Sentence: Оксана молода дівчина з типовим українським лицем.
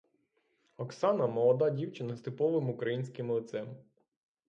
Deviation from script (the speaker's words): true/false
false